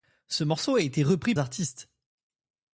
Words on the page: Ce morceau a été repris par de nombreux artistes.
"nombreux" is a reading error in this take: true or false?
true